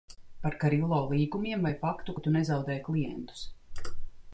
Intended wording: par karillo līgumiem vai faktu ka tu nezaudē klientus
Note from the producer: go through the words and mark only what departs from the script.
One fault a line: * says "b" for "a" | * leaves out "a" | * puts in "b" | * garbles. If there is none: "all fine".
all fine